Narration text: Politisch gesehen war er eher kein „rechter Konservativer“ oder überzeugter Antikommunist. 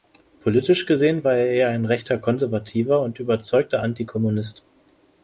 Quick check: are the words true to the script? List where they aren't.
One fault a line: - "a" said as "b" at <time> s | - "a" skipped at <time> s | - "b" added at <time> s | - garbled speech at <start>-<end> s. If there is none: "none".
- "kein" said as "ein" at 1.7 s
- "oder" said as "und" at 3.0 s